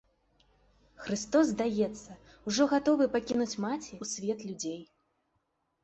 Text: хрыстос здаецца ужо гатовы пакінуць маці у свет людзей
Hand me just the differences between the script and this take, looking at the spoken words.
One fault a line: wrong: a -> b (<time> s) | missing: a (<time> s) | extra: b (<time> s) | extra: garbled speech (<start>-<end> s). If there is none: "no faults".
no faults